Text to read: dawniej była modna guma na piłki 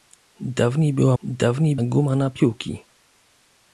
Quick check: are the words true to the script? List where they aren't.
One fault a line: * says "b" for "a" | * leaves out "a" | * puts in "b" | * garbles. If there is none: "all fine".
* says "dawniej" for "modna"